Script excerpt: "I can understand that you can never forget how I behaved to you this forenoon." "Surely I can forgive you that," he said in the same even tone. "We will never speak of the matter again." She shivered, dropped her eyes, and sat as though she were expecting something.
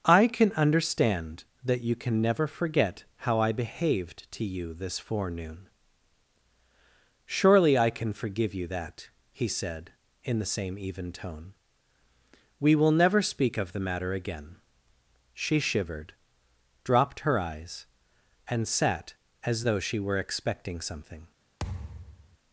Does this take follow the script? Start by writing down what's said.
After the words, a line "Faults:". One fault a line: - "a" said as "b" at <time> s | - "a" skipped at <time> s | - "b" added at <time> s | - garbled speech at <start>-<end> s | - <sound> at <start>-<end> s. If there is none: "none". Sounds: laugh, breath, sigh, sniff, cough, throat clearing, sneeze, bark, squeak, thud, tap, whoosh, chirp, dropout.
"I can understand that you can never forget how I behaved to you this forenoon." "Surely I can forgive you that," he said in the same even tone. "We will never speak of the matter again." She shivered, dropped her eyes, and sat as though she were expecting something.
Faults:
- thud at 21.6-22.4 s